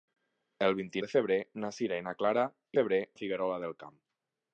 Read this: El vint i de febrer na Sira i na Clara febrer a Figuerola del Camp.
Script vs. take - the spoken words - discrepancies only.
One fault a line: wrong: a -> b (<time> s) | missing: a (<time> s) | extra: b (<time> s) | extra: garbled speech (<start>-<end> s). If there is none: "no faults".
no faults